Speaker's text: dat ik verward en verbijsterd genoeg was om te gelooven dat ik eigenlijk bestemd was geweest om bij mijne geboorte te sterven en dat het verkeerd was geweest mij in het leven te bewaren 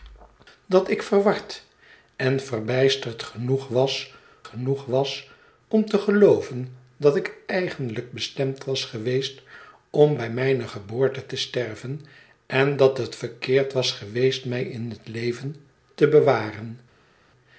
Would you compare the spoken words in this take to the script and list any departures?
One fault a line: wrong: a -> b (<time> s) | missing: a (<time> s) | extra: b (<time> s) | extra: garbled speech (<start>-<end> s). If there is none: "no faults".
extra: genoeg was (4.4 s)